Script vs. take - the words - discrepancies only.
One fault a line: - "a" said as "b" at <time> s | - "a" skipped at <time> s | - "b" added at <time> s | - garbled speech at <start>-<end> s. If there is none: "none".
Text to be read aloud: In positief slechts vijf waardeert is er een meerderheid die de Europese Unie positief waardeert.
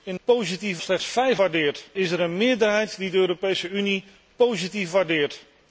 none